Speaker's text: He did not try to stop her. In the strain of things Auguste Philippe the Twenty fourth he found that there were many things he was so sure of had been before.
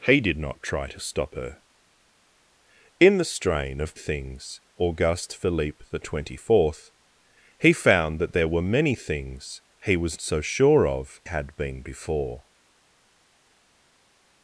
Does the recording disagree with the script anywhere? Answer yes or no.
no